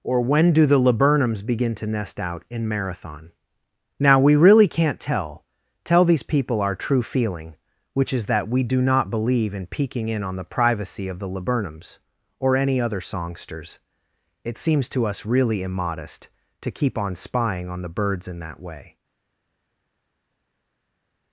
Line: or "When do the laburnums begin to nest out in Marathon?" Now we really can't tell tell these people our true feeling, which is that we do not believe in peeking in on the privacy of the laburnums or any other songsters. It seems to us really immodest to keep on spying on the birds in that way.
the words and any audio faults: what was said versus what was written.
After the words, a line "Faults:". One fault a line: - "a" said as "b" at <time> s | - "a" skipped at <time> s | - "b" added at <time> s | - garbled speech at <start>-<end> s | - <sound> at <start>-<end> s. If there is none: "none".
or "When do the laburnums begin to nest out in Marathon?" Now we really can't tell tell these people our true feeling, which is that we do not believe in peeking in on the privacy of the laburnums or any other songsters. It seems to us really immodest to keep on spying on the birds in that way.
Faults:
none